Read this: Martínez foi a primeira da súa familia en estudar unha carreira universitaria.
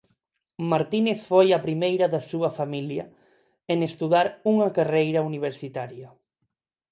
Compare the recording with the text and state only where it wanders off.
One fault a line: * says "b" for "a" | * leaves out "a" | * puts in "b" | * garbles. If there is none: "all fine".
all fine